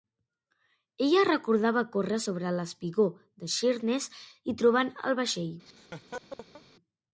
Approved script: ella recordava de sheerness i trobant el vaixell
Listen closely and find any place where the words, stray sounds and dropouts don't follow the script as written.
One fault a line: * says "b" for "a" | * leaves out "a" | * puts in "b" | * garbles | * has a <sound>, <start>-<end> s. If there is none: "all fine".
* puts in "córrer sobre l'espigó"
* has a laugh, 5.7-6.6 s